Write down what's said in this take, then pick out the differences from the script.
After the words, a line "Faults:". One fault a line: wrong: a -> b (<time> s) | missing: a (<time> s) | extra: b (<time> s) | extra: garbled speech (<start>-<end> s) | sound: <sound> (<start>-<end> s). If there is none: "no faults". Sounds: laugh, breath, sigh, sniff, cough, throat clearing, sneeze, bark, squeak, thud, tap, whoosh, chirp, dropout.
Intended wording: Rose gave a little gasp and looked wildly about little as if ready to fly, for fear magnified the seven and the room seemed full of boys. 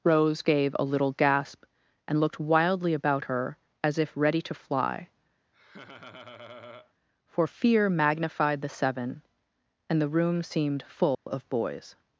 Rose gave a little gasp and looked wildly about her as if ready to fly, for fear magnified the seven and the room seemed full of boys.
Faults:
wrong: little -> her (3.2 s)
sound: laugh (5.5-6.9 s)
sound: dropout (11.1-11.3 s)